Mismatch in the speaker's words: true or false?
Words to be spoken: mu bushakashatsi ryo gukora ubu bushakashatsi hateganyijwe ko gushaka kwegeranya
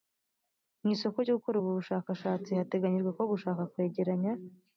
true